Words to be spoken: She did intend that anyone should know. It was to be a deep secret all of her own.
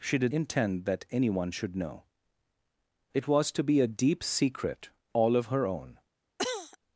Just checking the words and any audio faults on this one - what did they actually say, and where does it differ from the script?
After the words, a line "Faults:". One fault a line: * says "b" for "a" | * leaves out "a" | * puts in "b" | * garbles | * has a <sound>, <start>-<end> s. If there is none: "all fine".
She did intend that anyone should know. It was to be a deep secret all of her own.
Faults:
* has a cough, 6.4-6.8 s